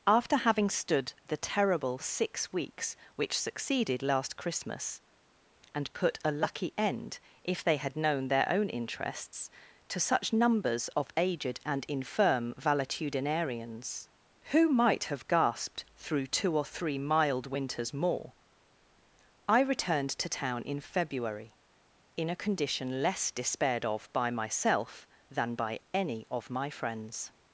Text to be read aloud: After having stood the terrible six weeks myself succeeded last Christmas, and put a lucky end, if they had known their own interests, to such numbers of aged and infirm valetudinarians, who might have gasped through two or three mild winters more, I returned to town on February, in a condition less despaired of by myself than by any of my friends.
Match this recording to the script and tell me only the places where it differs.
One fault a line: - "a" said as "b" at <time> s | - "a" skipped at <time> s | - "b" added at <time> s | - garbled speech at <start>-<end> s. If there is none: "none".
- "myself" said as "which" at 3.1 s
- "on" said as "in" at 20.6 s